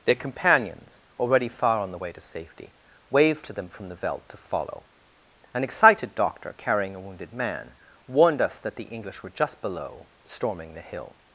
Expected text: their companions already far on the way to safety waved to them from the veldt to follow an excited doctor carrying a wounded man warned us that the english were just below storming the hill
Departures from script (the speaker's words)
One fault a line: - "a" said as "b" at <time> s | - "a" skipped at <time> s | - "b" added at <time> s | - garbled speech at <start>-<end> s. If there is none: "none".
none